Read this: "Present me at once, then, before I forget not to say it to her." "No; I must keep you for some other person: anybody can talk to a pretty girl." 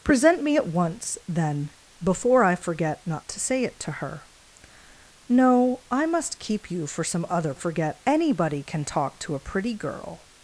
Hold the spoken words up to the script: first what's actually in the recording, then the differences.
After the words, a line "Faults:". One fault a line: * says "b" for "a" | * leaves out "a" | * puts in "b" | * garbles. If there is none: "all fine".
"Present me at once, then, before I forget not to say it to her." "No; I must keep you for some other forget: anybody can talk to a pretty girl."
Faults:
* says "forget" for "person"